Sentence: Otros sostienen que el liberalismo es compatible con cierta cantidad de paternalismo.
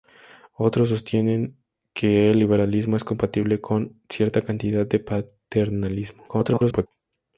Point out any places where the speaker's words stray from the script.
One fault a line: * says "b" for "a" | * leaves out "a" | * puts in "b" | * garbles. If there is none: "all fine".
* garbles